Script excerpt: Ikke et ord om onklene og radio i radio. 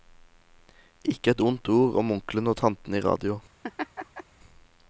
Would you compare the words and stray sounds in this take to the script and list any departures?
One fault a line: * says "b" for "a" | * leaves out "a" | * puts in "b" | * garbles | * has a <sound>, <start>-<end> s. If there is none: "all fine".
* puts in "ondt"
* says "tantene" for "radio"
* has a laugh, 3.6-4.2 s